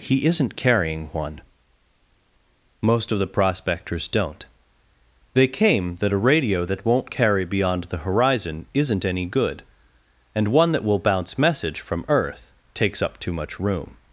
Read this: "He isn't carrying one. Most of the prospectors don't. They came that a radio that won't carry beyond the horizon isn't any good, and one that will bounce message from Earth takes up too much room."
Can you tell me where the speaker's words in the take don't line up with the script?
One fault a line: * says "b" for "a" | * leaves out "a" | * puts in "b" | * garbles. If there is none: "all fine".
all fine